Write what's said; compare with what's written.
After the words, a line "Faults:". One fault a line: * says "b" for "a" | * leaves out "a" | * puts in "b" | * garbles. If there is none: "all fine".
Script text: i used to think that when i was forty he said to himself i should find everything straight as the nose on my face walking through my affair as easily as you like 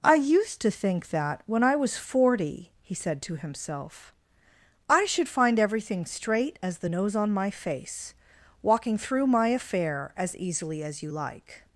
i used to think that when i was forty he said to himself i should find everything straight as the nose on my face walking through my affair as easily as you like
Faults:
all fine